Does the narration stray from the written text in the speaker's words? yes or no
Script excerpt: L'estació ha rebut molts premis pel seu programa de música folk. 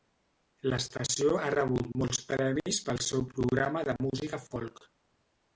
no